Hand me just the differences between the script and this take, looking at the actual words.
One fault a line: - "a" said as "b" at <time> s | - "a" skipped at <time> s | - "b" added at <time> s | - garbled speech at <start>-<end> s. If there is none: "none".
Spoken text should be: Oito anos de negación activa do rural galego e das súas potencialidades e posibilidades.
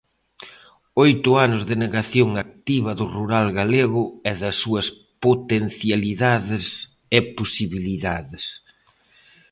none